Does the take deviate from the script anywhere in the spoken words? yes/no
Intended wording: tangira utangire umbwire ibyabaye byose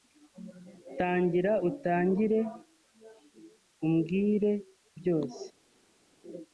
yes